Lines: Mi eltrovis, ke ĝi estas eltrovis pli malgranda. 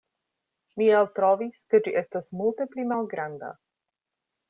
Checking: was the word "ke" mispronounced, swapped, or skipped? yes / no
no